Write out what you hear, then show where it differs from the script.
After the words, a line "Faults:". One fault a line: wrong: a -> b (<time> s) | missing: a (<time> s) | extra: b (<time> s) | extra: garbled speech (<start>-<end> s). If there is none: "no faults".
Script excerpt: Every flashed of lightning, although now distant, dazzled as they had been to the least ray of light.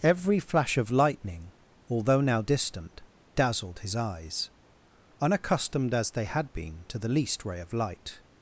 Every flash of lightning, although now distant, dazzled his eyes, unaccustomed as they had been to the least ray of light.
Faults:
wrong: flashed -> flash (0.4 s)
extra: his eyes unaccustomed (3.8 s)